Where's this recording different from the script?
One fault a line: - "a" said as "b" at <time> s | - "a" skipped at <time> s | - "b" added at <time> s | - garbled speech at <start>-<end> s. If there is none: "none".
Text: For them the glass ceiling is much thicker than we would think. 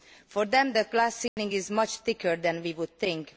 none